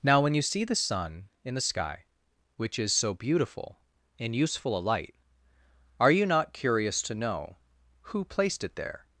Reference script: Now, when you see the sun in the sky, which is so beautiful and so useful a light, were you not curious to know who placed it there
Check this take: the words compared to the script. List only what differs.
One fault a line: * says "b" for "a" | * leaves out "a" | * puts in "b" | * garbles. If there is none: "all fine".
* leaves out "so"
* says "are" for "were"